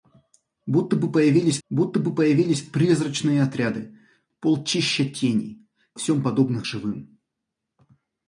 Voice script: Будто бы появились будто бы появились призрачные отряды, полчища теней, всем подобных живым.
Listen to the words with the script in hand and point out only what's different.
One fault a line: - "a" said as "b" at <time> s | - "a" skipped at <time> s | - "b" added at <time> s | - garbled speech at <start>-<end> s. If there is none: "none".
none